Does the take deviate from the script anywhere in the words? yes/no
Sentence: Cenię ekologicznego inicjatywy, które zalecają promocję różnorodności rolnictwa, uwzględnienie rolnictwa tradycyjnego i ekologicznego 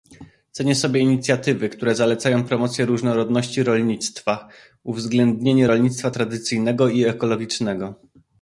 yes